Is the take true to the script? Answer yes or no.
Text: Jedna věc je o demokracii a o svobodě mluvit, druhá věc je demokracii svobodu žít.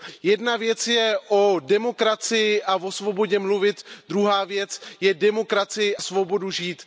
yes